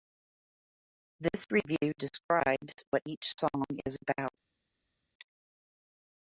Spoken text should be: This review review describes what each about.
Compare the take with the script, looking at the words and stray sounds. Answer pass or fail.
fail